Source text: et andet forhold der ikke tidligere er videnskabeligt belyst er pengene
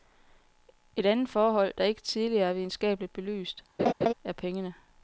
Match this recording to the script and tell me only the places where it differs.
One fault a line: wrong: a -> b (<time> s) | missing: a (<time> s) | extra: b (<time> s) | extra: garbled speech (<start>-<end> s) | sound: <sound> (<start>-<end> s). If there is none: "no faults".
sound: laugh (3.8-4.1 s)